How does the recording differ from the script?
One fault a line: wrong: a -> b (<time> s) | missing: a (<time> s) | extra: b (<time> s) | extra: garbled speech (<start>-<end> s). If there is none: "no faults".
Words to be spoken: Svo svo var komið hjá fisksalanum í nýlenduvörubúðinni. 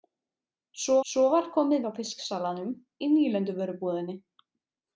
no faults